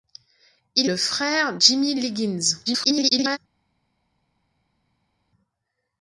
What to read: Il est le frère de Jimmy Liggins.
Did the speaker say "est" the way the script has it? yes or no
no